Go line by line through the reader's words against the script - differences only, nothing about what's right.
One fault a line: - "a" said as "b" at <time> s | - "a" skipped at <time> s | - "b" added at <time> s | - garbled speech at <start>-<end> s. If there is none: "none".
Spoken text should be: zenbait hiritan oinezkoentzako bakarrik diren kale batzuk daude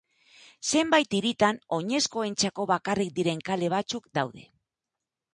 none